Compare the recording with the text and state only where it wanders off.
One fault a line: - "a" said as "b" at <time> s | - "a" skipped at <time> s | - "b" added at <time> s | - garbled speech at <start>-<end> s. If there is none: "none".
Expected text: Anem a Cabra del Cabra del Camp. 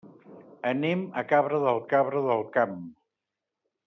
none